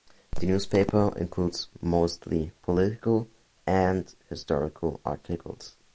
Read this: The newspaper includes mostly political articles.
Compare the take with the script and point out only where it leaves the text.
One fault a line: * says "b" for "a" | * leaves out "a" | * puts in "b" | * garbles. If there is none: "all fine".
* puts in "and historical"